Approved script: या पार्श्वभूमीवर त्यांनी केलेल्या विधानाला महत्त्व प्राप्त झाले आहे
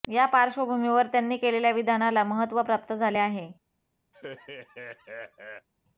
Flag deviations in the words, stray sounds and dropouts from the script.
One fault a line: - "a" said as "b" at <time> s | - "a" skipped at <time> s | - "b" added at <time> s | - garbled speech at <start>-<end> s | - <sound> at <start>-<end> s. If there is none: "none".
- laugh at 4.1-5.7 s